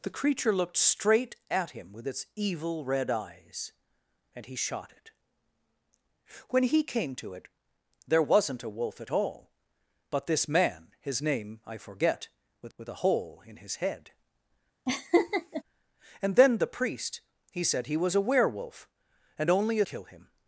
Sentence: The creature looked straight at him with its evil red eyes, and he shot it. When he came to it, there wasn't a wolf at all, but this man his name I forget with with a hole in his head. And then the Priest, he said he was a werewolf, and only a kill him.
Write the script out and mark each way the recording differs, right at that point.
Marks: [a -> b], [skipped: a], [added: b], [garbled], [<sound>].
The creature looked straight at him with its evil red eyes, and he shot it. When he came to it, there wasn't a wolf at all, but this man his name I forget with with a hole in his head. [laugh] And then the Priest, he said he was a werewolf, and only a kill him.